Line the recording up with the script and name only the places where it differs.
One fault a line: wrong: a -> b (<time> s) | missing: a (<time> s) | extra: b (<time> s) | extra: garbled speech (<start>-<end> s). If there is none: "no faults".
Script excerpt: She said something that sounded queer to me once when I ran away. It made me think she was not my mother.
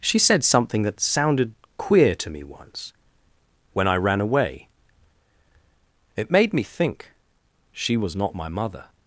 no faults